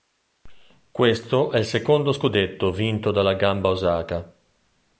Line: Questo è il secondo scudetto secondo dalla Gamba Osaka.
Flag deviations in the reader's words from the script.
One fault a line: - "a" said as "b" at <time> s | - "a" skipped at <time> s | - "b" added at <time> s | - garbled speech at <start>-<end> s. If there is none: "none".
- "secondo" said as "vinto" at 2.7 s